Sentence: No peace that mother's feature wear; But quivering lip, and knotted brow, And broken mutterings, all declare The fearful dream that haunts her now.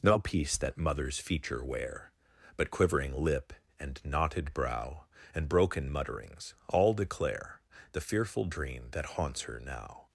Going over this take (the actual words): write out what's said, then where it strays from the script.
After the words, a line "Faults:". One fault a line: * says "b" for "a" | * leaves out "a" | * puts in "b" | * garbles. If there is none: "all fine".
No peace that mother's feature wear; But quivering lip, and knotted brow, And broken mutterings, all declare The fearful dream that haunts her now.
Faults:
all fine